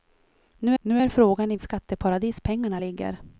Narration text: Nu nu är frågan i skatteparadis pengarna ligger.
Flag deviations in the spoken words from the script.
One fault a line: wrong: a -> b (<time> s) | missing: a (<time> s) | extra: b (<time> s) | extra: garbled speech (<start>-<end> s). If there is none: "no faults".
no faults